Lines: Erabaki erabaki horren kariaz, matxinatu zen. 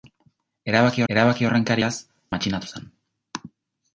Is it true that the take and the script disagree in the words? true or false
false